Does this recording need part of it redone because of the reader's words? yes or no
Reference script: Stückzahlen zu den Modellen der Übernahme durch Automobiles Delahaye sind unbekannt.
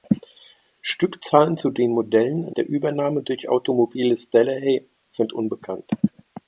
no